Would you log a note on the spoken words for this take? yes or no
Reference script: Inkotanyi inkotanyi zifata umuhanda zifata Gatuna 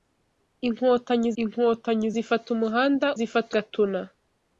no